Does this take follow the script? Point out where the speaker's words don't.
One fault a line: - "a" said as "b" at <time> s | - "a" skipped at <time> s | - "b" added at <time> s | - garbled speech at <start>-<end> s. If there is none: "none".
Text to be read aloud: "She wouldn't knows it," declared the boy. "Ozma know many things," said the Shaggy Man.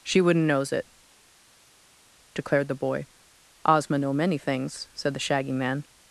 none